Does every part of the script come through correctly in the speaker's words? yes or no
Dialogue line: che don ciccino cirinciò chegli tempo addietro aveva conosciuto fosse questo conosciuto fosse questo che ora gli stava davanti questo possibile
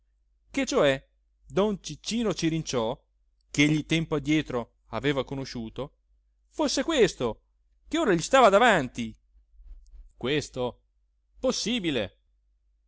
no